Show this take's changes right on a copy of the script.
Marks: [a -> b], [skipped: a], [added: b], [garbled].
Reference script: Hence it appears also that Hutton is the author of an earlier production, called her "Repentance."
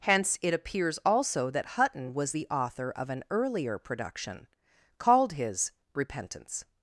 Hence it appears also that Hutton [is -> was] the author of an earlier production, called [her -> his] "Repentance."